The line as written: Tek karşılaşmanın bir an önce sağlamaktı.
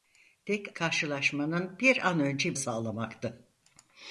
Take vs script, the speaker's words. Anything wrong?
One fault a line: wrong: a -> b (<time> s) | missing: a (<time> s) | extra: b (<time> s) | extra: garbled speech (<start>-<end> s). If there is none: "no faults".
no faults